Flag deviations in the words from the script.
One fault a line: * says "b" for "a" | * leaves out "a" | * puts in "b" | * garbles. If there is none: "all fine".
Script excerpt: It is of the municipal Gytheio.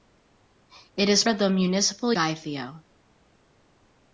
all fine